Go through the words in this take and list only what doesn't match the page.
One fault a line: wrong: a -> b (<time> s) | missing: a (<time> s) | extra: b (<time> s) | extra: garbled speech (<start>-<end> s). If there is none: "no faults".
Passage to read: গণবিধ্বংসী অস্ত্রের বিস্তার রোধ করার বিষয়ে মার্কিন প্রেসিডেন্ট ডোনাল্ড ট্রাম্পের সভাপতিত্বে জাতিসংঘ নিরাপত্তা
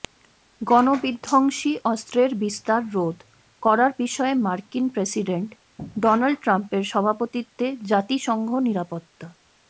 no faults